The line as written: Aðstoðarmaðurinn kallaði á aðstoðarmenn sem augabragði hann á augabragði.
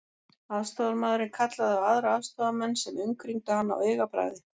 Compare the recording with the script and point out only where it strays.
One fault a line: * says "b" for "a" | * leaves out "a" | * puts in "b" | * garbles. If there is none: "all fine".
* puts in "aðra"
* says "umkringdu" for "augabragði"